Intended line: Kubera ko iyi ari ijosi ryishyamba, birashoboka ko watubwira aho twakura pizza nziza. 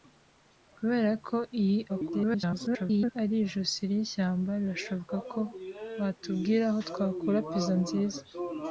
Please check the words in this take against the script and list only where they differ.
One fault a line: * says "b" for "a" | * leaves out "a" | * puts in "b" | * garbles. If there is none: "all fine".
* garbles